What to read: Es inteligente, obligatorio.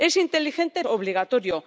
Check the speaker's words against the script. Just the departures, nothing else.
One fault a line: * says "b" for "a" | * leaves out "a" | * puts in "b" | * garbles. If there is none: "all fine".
all fine